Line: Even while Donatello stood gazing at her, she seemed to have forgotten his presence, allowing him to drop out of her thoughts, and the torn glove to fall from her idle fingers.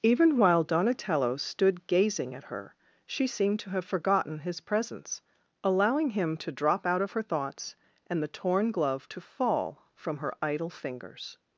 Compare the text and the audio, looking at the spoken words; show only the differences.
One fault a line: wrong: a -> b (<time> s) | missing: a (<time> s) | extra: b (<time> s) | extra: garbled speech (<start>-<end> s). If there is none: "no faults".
no faults